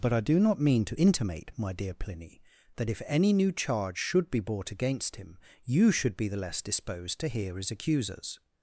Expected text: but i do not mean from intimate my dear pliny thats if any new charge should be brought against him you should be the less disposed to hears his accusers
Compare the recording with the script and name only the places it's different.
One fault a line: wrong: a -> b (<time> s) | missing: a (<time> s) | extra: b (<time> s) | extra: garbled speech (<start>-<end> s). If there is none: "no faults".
wrong: from -> to (0.8 s)
wrong: thats -> that (2.8 s)
wrong: hears -> hear (7.3 s)